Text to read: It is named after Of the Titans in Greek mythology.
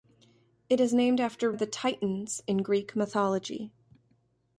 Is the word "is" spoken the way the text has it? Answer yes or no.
yes